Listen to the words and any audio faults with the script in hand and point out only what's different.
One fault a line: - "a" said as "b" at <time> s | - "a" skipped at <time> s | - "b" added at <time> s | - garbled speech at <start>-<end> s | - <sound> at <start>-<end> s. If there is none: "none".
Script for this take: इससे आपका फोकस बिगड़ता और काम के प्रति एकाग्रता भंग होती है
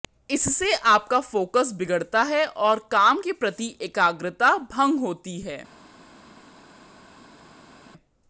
- "है" added at 2.2 s